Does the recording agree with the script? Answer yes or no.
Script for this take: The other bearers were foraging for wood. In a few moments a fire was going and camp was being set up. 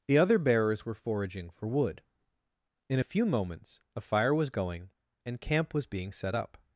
yes